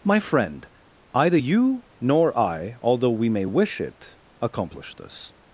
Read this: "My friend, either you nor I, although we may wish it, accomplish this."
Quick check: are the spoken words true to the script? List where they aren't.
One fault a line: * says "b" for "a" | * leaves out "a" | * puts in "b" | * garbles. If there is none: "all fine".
all fine